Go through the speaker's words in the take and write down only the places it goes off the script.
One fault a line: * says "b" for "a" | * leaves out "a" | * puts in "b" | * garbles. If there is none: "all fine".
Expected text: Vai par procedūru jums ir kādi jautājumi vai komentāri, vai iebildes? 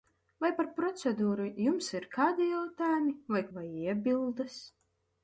* leaves out "komentāri"